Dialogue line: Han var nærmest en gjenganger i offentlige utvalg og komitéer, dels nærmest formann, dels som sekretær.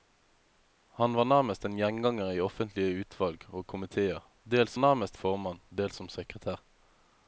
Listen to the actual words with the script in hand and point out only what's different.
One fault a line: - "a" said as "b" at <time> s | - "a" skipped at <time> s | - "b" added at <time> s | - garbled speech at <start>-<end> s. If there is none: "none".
none